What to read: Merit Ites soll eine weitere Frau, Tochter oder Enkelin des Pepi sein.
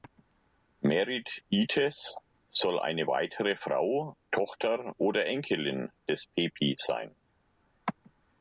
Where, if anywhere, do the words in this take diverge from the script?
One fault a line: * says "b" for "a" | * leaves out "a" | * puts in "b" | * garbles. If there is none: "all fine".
all fine